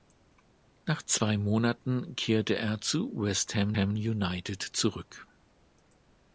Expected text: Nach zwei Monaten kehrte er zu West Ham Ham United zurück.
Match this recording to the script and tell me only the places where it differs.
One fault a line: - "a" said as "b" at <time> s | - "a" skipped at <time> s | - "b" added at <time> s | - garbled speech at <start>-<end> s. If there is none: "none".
none